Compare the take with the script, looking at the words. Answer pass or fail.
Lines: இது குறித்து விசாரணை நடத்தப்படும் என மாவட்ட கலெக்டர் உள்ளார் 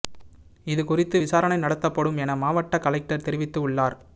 fail